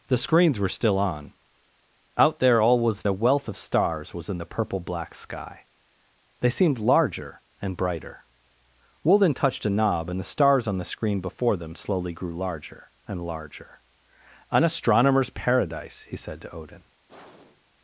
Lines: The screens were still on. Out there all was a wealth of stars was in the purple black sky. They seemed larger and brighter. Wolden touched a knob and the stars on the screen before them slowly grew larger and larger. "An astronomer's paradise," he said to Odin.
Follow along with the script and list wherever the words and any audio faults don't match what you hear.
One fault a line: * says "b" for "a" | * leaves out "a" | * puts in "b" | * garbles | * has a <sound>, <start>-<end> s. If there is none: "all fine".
* has a sigh, 17.1-17.7 s